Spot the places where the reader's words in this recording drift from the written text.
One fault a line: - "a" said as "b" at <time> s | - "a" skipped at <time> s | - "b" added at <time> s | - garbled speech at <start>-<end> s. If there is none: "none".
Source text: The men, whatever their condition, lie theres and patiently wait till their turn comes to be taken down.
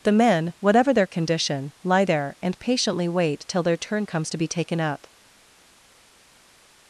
- "theres" said as "there" at 2.0 s
- "down" said as "up" at 4.8 s